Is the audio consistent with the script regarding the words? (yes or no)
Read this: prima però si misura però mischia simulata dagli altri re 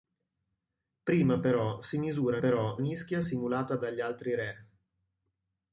yes